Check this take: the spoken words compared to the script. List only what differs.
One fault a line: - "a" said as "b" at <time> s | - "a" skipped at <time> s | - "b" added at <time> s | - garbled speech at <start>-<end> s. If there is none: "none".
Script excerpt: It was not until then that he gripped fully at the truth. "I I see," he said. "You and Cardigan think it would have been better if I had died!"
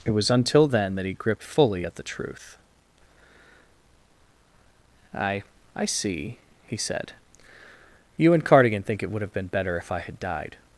- "not" skipped at 0.3 s